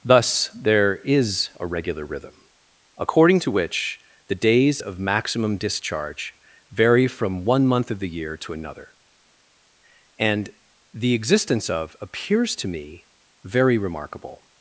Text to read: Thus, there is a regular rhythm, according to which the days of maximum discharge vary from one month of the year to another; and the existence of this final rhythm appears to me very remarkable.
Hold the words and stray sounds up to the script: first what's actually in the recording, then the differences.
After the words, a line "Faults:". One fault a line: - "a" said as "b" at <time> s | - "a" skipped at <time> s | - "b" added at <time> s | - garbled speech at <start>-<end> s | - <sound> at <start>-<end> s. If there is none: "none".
Thus, there is a regular rhythm, according to which the days of maximum discharge vary from one month of the year to another; and the existence of appears to me very remarkable.
Faults:
- "this final rhythm" skipped at 12.0 s